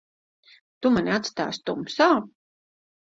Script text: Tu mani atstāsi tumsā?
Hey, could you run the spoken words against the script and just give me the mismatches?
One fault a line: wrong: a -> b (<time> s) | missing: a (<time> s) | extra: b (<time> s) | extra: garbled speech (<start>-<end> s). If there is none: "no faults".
no faults